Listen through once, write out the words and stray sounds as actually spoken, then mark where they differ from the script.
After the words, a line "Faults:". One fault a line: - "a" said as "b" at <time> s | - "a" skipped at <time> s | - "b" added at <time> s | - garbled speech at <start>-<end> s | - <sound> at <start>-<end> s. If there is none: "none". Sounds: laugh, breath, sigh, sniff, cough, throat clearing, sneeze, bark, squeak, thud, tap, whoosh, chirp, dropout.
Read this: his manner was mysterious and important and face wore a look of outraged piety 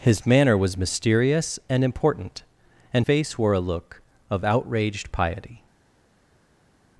his manner was mysterious and important and face wore a look of outraged piety
Faults:
none